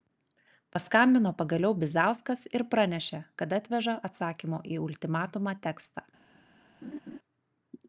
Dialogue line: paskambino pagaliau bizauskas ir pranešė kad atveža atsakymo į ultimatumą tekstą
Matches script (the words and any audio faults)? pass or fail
fail